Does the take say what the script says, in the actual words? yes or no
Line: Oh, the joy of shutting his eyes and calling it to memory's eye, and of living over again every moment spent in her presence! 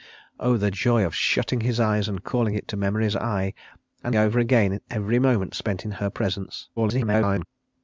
no